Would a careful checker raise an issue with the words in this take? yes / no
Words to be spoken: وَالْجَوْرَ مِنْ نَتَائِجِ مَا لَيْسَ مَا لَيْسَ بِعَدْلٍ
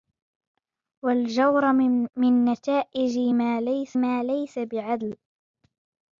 no